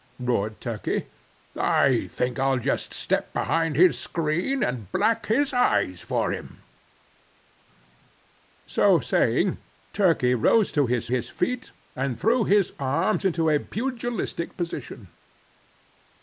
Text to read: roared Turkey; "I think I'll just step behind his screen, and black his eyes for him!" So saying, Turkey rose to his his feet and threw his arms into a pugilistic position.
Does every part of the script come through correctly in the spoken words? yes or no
yes